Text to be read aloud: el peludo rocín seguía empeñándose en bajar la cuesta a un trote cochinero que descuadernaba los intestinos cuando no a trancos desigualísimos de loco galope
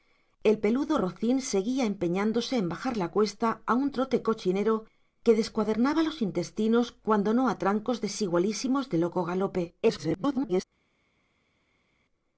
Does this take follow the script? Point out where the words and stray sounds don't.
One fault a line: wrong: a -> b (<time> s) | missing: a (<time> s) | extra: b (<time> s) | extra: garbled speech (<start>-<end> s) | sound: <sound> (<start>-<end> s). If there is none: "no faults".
extra: garbled speech (9.8-10.6 s)